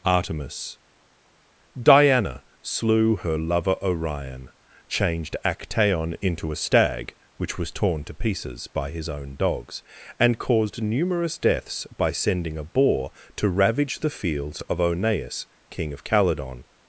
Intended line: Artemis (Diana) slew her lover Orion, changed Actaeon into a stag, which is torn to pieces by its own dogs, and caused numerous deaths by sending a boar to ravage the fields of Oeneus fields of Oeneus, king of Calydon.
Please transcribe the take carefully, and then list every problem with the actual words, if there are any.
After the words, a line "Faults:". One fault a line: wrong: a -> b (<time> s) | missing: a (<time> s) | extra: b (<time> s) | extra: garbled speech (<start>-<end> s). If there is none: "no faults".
Artemis (Diana) slew her lover Orion, changed Actaeon into a stag, which was torn to pieces by his own dogs, and caused numerous deaths by sending a boar to ravage the fields of Oeneus, king of Calydon.
Faults:
wrong: is -> was (7.6 s)
wrong: its -> his (8.9 s)
missing: fields of Oeneus (15.5 s)